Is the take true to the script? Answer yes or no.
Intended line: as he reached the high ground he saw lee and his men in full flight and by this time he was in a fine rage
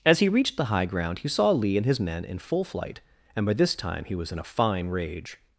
yes